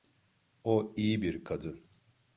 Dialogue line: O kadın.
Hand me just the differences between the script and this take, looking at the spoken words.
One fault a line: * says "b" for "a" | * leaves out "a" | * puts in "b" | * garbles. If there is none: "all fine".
* puts in "iyi bir"